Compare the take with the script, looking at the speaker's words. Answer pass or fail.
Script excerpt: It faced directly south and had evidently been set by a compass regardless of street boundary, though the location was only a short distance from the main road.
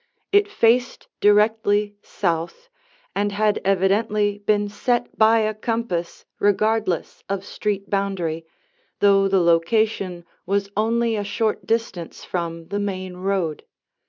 pass